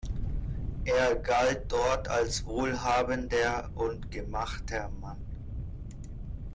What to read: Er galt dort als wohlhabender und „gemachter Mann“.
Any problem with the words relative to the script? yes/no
no